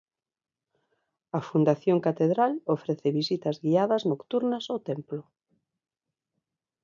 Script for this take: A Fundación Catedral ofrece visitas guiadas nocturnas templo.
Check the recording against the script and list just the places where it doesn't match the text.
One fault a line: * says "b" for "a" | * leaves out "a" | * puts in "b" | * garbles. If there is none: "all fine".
* puts in "ao"